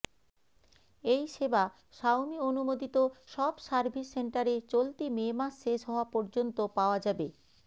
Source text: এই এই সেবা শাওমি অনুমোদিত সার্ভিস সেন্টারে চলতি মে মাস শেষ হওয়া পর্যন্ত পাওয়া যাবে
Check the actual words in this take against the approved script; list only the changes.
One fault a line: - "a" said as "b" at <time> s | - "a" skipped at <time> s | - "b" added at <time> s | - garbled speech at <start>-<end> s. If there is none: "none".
- "এই" skipped at 1.2 s
- "সব" added at 3.3 s